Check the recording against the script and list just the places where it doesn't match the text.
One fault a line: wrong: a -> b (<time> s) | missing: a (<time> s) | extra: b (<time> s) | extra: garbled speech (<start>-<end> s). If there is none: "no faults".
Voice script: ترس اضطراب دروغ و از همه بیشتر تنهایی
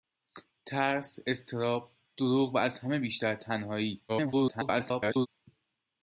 extra: garbled speech (4.1-5.3 s)